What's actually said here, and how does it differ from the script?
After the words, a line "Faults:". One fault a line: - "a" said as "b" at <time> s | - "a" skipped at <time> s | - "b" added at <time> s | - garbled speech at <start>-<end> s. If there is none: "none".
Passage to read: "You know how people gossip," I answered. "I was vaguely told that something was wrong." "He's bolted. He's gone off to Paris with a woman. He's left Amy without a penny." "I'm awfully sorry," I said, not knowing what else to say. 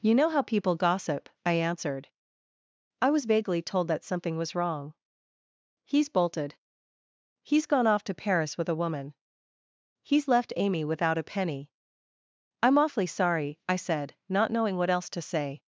"You know how people gossip," I answered. "I was vaguely told that something was wrong." "He's bolted. He's gone off to Paris with a woman. He's left Amy without a penny." "I'm awfully sorry," I said, not knowing what else to say.
Faults:
none